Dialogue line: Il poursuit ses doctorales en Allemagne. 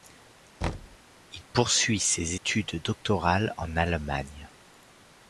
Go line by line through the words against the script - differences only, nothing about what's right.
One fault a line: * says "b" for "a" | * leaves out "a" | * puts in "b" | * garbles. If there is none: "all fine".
* puts in "études"